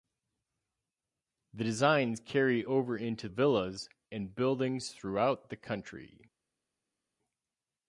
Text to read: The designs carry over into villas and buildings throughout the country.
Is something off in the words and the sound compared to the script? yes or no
no